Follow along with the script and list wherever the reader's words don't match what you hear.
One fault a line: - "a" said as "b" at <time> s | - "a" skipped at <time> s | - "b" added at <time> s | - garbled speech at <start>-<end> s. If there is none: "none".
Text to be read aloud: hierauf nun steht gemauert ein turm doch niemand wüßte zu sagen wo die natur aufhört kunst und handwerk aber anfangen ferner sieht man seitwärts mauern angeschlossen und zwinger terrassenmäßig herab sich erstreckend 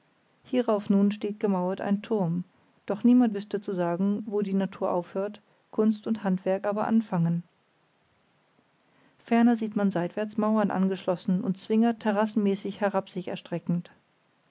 none